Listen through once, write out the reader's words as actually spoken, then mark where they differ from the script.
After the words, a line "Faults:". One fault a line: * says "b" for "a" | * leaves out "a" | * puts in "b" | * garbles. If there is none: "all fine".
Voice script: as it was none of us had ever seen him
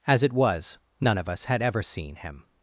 as it was none of us had ever seen him
Faults:
all fine